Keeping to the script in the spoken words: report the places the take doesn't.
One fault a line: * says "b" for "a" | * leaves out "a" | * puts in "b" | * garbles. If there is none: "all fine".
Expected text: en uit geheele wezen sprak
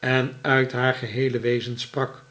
* puts in "haar"